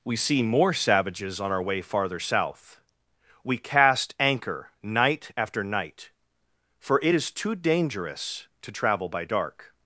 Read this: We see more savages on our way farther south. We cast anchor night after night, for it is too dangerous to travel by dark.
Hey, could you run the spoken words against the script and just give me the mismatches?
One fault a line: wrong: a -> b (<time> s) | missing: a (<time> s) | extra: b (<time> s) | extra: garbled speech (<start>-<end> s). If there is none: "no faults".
no faults